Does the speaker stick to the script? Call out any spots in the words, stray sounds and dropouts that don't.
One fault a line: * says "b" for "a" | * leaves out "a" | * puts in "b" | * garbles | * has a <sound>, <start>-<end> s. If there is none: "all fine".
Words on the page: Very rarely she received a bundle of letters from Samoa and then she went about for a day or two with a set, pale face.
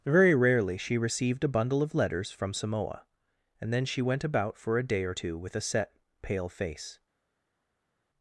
all fine